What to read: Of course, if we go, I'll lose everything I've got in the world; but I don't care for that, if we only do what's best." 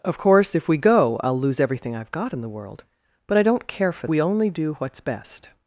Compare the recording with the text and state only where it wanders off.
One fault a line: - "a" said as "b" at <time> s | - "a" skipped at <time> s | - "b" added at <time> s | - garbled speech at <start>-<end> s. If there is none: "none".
- "that if" skipped at 4.1 s